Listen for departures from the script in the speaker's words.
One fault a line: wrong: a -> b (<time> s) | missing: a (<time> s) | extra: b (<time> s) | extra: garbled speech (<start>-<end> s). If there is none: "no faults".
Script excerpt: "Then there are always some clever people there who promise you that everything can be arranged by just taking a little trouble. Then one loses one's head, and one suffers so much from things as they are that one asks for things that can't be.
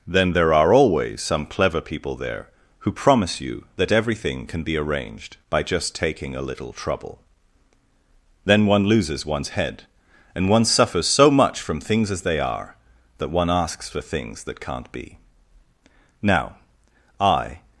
extra: Now I (16.2 s)